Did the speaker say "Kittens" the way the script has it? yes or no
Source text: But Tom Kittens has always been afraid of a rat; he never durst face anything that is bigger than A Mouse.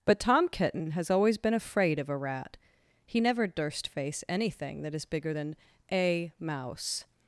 no